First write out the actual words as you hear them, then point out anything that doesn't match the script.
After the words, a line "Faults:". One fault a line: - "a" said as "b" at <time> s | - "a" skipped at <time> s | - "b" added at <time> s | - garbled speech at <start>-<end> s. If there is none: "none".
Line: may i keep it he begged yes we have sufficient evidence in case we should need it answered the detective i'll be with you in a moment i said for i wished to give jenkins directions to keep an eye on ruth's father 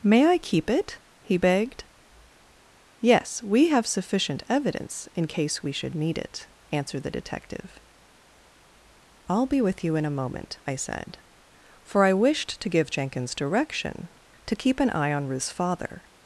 may i keep it he begged yes we have sufficient evidence in case we should need it answered the detective i'll be with you in a moment i said for i wished to give jenkins direction to keep an eye on ruth's father
Faults:
- "directions" said as "direction" at 13.3 s